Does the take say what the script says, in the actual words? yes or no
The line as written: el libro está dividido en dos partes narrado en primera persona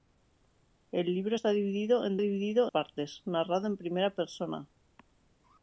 no